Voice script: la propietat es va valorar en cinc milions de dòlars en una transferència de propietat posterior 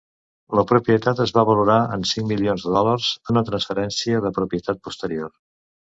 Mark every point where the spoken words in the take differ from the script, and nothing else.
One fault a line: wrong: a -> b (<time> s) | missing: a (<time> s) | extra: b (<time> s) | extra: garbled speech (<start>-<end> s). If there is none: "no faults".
missing: en (3.1 s)